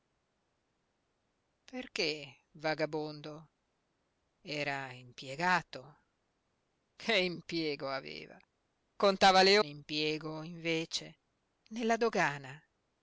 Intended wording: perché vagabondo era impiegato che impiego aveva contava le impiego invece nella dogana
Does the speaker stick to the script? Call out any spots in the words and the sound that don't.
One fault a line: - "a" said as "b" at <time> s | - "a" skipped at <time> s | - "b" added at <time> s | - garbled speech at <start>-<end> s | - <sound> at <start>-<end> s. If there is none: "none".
none